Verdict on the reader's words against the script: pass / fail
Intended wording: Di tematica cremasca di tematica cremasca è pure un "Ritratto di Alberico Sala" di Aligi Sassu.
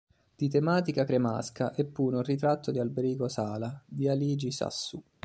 fail